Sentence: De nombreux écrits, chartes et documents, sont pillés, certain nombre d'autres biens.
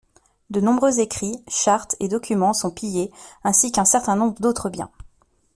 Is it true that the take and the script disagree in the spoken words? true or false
true